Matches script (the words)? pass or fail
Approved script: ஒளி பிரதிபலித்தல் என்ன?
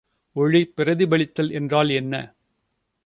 fail